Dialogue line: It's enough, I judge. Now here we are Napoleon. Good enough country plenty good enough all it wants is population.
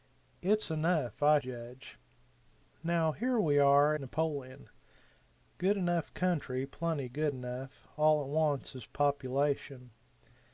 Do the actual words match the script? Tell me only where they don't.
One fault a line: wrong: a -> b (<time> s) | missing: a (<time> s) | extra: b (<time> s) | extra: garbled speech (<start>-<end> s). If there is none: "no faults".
no faults